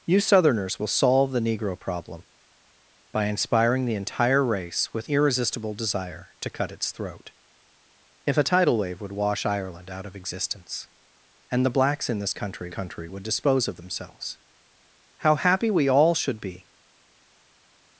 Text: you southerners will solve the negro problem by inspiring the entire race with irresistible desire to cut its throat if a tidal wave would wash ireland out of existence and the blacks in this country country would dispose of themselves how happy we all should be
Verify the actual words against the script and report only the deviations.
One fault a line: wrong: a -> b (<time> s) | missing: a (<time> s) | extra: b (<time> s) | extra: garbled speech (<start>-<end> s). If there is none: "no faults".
no faults